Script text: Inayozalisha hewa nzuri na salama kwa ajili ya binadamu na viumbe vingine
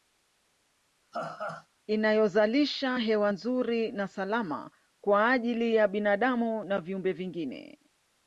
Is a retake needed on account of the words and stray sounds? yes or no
yes